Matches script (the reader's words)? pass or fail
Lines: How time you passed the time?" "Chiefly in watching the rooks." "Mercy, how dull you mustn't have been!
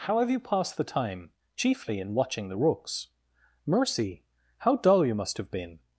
fail